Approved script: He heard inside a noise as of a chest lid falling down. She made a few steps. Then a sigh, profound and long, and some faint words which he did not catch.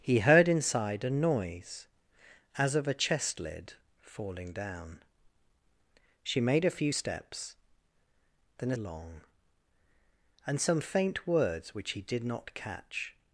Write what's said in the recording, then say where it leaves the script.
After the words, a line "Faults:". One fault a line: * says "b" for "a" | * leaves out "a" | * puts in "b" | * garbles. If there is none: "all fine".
He heard inside a noise as of a chest lid falling down. She made a few steps. Then a long, and some faint words which he did not catch.
Faults:
* leaves out "sigh profound and"